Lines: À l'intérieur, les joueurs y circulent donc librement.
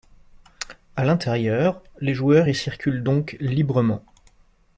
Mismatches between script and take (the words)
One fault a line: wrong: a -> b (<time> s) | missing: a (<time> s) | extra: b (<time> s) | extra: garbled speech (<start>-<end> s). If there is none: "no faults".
no faults